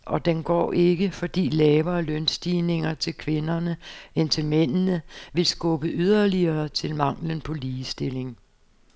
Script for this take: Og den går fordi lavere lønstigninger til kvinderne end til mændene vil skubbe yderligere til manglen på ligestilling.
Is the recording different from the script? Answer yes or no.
yes